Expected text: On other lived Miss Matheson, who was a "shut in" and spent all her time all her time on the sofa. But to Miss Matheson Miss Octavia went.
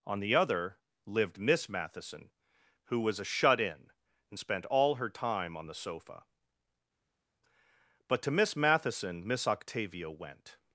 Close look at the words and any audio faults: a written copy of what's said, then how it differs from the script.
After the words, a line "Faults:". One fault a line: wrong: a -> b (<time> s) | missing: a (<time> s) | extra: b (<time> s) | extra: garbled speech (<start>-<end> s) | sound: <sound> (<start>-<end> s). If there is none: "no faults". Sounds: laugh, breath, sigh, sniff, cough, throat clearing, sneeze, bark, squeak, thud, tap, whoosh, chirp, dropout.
On the other lived Miss Matheson, who was a "shut in" and spent all her time on the sofa. But to Miss Matheson Miss Octavia went.
Faults:
extra: the (0.2 s)
missing: all her time (5.6 s)